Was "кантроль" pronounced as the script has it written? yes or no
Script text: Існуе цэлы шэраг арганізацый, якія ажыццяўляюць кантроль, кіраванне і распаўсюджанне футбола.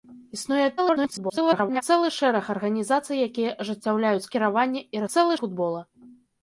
no